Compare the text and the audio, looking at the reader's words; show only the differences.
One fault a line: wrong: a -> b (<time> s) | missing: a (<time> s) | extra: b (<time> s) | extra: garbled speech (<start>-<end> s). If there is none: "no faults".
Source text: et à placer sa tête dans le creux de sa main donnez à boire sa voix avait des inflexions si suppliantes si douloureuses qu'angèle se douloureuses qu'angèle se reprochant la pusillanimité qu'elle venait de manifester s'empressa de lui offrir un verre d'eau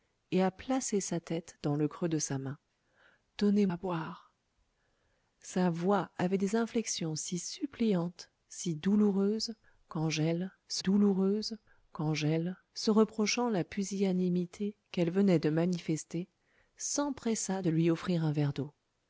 no faults